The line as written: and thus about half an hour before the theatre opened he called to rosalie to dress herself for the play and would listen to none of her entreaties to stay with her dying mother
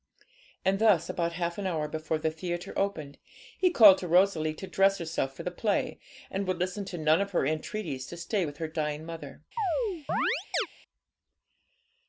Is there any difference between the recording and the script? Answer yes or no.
no